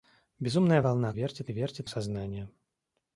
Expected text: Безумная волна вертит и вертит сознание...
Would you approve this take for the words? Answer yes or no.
yes